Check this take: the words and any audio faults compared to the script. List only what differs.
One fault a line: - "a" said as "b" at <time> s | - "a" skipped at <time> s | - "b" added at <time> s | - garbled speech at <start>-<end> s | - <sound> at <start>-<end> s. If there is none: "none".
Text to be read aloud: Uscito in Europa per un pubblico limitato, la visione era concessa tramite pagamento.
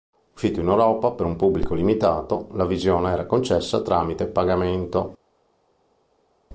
none